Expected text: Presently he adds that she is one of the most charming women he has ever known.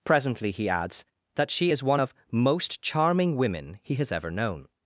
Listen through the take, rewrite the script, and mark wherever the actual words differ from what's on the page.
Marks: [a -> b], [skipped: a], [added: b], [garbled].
Presently he adds that she is one of [skipped: the] most charming women he has ever known.